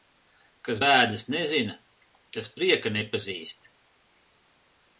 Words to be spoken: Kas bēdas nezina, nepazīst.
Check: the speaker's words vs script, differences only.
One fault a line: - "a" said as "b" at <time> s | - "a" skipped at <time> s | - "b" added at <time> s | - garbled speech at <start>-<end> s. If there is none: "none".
- "tas prieka" added at 2.4 s